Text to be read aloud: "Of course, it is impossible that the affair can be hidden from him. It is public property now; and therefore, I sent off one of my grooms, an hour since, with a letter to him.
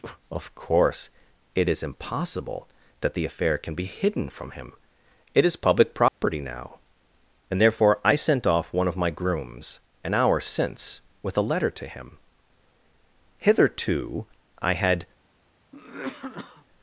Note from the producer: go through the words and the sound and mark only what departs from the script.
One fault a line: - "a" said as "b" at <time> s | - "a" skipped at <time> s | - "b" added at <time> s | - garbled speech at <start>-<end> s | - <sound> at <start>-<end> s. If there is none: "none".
- dropout at 6.1-6.2 s
- "Hitherto I had" added at 13.4 s
- cough at 15.7-16.7 s